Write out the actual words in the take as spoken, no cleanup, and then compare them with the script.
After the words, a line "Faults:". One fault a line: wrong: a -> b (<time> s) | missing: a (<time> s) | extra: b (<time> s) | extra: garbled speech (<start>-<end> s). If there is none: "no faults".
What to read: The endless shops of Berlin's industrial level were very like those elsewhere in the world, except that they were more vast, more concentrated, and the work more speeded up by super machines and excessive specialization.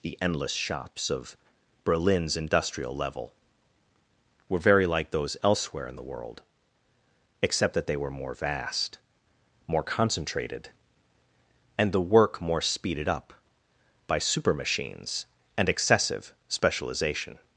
The endless shops of Berlin's industrial level were very like those elsewhere in the world, except that they were more vast, more concentrated, and the work more speeded up by super machines and excessive specialization.
Faults:
no faults